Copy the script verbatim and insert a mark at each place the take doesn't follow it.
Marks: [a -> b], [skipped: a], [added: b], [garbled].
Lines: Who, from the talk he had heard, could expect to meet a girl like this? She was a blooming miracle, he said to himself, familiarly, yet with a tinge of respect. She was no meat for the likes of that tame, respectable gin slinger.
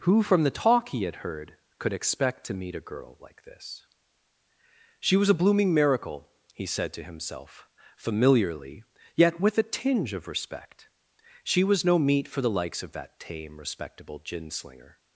Who, from the talk he had heard, could expect to meet a girl like this? She was a blooming miracle, he said to himself, familiarly, yet with a tinge of respect. She was no meat for the likes of that tame, respectable gin slinger.